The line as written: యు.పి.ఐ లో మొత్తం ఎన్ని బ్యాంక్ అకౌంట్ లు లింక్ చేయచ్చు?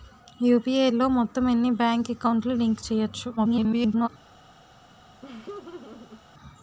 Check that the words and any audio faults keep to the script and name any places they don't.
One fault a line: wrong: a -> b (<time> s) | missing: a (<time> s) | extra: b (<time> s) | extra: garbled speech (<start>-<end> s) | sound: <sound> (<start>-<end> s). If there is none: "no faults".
extra: garbled speech (3.4-4.1 s)
sound: laugh (5.2-6.2 s)